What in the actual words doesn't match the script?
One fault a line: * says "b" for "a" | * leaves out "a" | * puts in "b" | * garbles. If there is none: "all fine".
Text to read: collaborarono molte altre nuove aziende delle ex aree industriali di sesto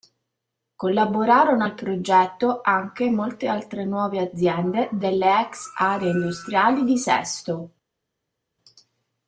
* puts in "al progetto anche"